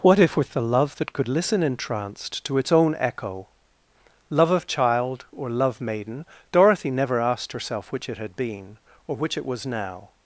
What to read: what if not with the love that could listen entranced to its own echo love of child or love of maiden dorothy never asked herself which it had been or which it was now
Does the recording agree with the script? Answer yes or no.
no